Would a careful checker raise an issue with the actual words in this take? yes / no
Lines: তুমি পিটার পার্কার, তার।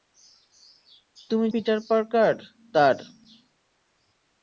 no